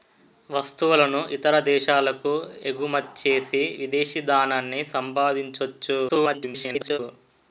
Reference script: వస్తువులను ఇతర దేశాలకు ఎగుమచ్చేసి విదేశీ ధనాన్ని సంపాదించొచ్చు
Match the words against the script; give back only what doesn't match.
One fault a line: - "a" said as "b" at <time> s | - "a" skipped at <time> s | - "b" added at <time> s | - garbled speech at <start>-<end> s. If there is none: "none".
- garbled speech at 6.1-7.0 s